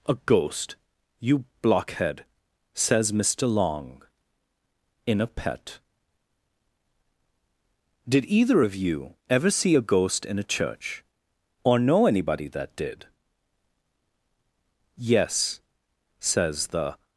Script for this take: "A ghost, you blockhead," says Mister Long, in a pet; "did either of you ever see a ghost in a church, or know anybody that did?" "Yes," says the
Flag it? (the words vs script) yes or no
no